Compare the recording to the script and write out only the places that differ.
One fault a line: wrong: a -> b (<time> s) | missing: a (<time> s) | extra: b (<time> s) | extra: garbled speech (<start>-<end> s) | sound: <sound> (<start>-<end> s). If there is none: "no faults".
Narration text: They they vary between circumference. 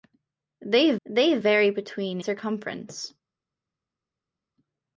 no faults